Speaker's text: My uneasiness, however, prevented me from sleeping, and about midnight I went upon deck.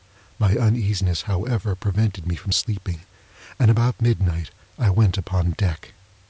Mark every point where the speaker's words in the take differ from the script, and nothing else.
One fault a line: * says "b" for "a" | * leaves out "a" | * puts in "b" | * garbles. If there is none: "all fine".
all fine